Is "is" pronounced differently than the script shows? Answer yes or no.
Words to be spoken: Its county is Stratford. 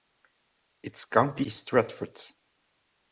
no